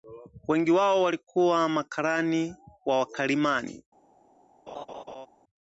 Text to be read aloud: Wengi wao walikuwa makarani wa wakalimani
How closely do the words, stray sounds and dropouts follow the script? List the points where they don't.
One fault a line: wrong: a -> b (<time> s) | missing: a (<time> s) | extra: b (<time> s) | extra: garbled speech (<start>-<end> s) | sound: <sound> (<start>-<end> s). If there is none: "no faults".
sound: laugh (4.7-5.3 s)